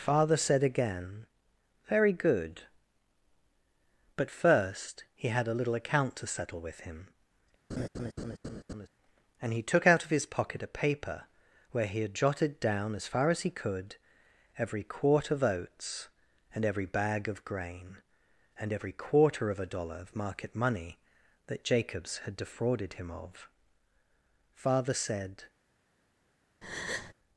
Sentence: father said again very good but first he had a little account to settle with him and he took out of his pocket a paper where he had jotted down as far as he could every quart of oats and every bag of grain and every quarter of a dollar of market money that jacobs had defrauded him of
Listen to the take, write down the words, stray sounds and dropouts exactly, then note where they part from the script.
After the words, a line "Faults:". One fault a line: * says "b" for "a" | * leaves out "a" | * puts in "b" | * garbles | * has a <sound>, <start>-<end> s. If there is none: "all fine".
father said again very good but first he had a little account to settle with him and he took out of his pocket a paper where he had jotted down as far as he could every quart of oats and every bag of grain and every quarter of a dollar of market money that jacobs had defrauded him of father said
Faults:
* has a laugh, 7.7-8.9 s
* puts in "father said"
* has a breath, 26.6-27.1 s